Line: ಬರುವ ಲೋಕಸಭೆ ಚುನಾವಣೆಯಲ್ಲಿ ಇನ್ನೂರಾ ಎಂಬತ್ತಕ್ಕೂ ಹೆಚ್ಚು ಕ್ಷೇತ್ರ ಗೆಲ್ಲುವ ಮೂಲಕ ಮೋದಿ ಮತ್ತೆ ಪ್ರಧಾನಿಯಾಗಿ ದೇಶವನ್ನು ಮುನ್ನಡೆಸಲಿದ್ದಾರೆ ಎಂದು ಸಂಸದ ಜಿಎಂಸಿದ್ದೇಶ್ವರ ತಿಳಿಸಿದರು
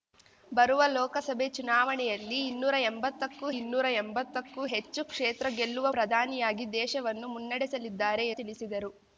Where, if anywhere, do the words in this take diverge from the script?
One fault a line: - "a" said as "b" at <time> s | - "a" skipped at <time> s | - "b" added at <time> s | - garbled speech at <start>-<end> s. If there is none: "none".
- "ಇನ್ನೂರಾ ಎಂಬತ್ತಕ್ಕೂ" added at 3.5 s
- "ಮೂಲಕ ಮೋದಿ ಮತ್ತೆ" skipped at 5.9 s
- "ಎಂದು ಸಂಸದ ಜಿಎಂಸಿದ್ದೇಶ್ವರ" skipped at 8.3 s